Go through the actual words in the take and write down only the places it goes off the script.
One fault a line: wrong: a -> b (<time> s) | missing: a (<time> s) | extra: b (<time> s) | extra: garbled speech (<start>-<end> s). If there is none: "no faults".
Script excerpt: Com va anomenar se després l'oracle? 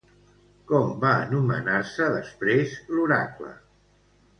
no faults